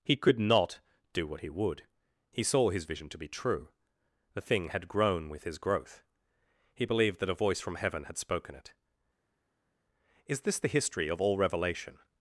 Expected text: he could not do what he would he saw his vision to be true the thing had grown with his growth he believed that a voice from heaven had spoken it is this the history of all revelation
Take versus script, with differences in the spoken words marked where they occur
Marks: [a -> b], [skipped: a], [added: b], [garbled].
he could not do what he would he saw his vision to be true the thing had grown with his growth he believed that a voice from heaven had spoken it is this the history of all revelation